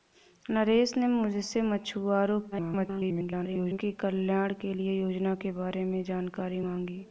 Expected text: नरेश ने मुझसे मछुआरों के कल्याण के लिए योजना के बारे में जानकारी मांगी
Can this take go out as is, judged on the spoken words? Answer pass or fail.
fail